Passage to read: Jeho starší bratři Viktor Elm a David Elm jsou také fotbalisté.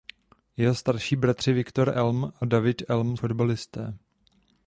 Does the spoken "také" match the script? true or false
false